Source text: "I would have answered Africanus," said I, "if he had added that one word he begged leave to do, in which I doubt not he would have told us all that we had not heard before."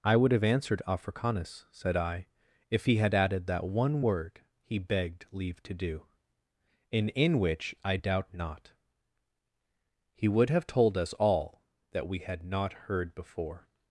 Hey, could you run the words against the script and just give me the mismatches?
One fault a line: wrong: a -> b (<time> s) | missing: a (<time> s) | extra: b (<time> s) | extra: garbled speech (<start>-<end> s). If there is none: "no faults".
extra: in (7.1 s)